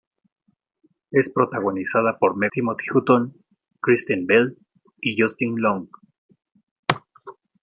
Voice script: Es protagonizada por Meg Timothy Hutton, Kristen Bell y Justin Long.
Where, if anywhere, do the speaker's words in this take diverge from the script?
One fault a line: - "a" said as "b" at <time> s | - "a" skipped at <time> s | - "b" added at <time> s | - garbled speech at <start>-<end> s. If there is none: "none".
none